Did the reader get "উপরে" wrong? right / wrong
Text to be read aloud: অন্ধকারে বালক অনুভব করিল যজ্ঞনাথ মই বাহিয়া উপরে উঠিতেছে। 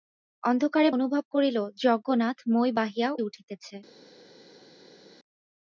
wrong